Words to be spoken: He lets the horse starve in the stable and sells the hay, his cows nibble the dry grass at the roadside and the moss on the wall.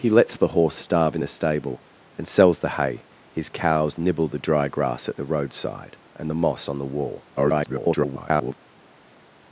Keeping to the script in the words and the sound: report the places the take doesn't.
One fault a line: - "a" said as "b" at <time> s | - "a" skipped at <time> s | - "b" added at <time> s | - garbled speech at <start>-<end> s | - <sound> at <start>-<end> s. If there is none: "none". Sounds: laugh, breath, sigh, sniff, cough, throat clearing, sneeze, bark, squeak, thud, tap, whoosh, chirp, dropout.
- garbled speech at 7.4-8.5 s